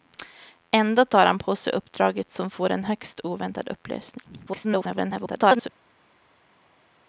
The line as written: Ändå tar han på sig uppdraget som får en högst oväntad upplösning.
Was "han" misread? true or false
false